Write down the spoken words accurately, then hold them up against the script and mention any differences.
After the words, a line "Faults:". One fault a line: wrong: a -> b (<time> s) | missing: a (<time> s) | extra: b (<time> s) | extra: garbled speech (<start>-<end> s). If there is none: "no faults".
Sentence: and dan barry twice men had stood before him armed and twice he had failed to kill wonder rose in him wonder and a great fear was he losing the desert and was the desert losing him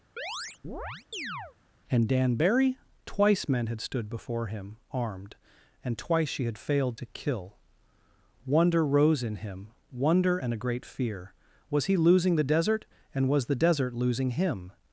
and dan barry twice men had stood before him armed and twice she had failed to kill wonder rose in him wonder and a great fear was he losing the desert and was the desert losing him
Faults:
wrong: he -> she (6.3 s)